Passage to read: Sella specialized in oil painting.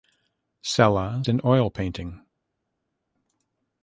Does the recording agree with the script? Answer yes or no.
no